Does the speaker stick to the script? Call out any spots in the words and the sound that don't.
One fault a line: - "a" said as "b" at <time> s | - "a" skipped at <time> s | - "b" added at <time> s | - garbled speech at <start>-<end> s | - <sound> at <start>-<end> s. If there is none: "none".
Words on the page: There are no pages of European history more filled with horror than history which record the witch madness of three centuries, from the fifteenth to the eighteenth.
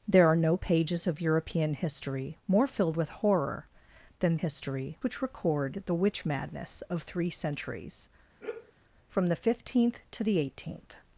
- sigh at 8.4-8.7 s